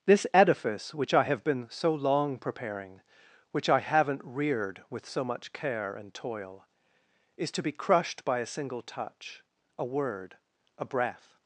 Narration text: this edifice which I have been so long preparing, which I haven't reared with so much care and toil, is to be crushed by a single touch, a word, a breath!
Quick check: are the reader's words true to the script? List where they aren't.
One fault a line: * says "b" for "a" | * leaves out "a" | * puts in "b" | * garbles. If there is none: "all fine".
all fine